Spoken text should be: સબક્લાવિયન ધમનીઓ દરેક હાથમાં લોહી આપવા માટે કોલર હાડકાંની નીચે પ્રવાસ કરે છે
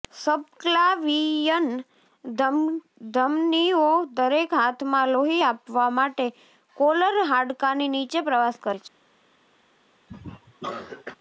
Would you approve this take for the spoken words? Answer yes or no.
yes